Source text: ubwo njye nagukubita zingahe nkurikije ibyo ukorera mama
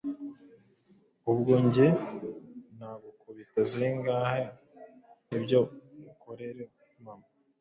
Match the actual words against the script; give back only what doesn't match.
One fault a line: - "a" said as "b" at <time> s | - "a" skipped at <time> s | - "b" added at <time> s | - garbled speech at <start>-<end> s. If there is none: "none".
- "nkurikije" skipped at 4.4 s